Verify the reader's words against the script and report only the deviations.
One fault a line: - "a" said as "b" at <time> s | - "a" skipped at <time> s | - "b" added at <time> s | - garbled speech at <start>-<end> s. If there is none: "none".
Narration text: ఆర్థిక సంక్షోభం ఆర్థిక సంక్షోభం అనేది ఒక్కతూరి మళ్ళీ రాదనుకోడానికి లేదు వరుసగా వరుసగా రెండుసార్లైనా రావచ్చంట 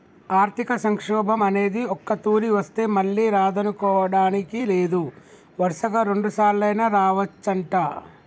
- "ఆర్థిక సంక్షోభం" skipped at 1.4 s
- "వస్తే" added at 2.5 s
- "వరుసగా" skipped at 6.0 s